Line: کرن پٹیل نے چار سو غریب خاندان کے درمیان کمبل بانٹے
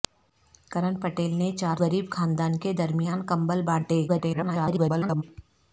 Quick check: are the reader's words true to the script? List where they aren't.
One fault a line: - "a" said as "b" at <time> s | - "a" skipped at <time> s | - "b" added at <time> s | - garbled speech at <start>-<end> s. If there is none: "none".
- "سو" skipped at 1.8 s
- garbled speech at 4.1-5.2 s